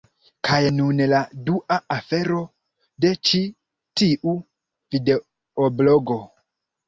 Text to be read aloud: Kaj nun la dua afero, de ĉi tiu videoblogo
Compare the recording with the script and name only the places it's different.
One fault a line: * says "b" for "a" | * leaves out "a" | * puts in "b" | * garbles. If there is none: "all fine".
all fine